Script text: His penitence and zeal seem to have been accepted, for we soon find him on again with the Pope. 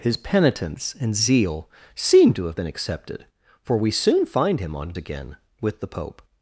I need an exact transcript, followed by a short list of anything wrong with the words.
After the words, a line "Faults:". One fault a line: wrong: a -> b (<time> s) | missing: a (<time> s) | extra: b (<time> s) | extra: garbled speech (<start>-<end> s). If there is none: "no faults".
His penitence and zeal seem to have been accepted, for we soon find him on again with the Pope.
Faults:
no faults